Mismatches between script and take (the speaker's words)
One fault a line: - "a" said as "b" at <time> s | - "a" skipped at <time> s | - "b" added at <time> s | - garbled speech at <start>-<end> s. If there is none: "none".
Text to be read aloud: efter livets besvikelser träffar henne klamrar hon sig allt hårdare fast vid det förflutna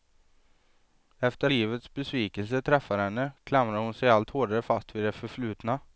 none